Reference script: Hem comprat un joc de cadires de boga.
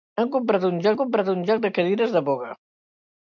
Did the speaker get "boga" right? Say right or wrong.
right